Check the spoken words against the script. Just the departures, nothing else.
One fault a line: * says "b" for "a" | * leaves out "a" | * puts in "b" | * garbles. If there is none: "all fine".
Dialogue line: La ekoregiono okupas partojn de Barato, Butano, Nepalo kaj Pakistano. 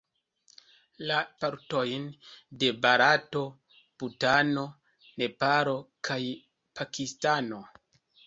* leaves out "ekoregiono okupas"